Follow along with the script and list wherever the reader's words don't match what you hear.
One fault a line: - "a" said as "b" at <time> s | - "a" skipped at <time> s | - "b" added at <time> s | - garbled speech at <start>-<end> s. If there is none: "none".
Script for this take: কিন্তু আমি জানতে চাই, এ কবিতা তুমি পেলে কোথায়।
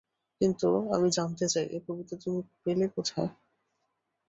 none